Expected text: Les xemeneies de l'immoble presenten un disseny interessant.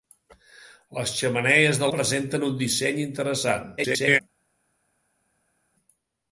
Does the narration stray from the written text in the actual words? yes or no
yes